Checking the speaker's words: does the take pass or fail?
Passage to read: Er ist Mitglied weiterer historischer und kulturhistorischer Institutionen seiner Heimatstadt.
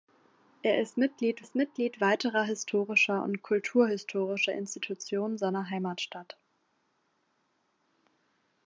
fail